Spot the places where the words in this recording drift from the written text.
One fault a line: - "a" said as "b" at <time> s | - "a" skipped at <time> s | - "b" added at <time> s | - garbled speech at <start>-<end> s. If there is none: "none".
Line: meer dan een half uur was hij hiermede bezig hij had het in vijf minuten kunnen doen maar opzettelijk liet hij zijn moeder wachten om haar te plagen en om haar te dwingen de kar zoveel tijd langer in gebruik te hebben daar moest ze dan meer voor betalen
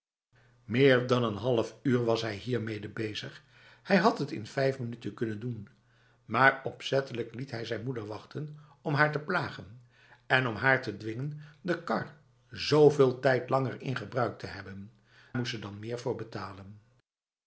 - "daar" skipped at 14.9 s